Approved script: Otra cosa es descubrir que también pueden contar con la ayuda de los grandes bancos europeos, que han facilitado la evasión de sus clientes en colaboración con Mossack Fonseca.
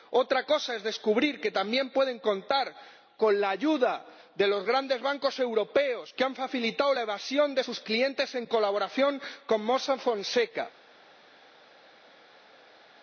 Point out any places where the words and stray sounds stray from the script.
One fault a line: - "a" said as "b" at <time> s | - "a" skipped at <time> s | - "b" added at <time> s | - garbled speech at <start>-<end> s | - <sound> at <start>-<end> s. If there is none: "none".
none